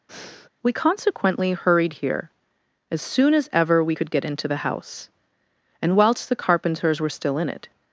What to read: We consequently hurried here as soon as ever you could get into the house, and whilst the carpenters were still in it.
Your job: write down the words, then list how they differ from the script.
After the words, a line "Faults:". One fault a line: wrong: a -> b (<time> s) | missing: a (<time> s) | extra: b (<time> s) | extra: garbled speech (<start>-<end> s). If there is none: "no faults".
We consequently hurried here as soon as ever we could get into the house, and whilst the carpenters were still in it.
Faults:
wrong: you -> we (3.8 s)